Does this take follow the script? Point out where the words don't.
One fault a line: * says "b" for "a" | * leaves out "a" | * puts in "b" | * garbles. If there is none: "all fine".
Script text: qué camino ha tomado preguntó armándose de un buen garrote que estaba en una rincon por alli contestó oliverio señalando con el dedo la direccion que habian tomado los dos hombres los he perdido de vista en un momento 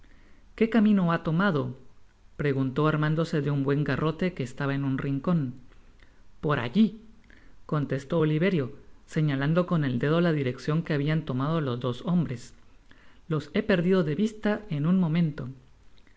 * says "un" for "una"